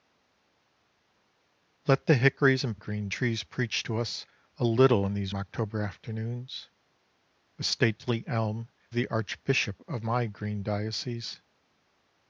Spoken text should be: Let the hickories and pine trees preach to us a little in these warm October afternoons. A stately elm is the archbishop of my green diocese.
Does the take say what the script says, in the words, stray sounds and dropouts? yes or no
no